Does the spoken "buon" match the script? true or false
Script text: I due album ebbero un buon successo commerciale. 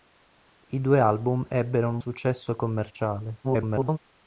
false